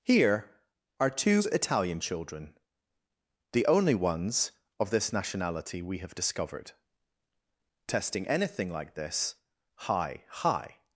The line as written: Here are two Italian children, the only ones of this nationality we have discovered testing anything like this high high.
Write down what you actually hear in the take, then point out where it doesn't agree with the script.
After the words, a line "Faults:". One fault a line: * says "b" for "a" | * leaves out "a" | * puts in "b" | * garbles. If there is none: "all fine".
Here are two Italian children, the only ones of this nationality we have discovered testing anything like this high high.
Faults:
all fine